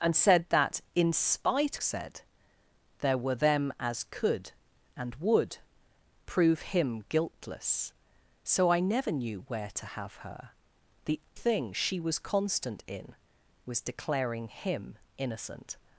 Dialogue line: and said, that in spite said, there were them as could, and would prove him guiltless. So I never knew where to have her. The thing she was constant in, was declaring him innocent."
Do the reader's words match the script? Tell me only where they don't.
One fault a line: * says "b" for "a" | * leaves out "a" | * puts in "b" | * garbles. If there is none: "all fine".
all fine